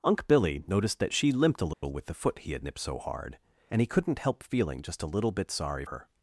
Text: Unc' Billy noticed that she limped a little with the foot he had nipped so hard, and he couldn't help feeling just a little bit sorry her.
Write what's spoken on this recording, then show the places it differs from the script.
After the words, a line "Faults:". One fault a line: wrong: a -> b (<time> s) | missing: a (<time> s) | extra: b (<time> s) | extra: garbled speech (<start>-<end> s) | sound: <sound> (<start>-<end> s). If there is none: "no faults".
Unc' Billy noticed that she limped a little with the foot he had nipped so hard, and he couldn't help feeling just a little bit sorry her.
Faults:
sound: dropout (1.7-1.8 s)